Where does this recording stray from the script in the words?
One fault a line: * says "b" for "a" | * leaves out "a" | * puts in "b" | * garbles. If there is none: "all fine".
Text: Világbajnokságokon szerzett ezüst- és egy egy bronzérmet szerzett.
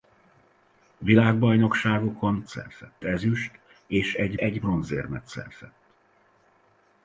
all fine